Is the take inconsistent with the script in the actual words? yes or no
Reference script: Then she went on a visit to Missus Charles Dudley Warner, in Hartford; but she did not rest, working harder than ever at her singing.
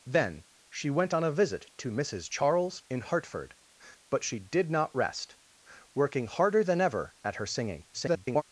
yes